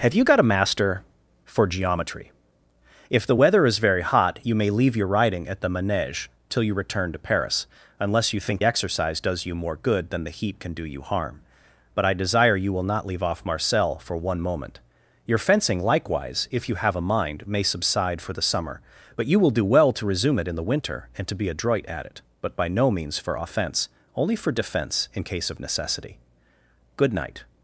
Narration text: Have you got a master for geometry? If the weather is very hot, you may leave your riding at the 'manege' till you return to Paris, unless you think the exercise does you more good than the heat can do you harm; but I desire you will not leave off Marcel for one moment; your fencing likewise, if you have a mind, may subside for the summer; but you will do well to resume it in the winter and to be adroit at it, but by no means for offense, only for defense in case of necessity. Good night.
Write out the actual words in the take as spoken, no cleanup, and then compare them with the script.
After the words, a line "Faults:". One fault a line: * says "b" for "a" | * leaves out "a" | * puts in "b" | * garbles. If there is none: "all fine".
Have you got a master for geometry? If the weather is very hot, you may leave your riding at the 'manege' till you return to Paris, unless you think exercise does you more good than the heat can do you harm; but I desire you will not leave off Marcel for one moment; your fencing likewise, if you have a mind, may subside for the summer; but you will do well to resume it in the winter and to be adroit at it, but by no means for offense, only for defense in case of necessity. Good night.
Faults:
* leaves out "the"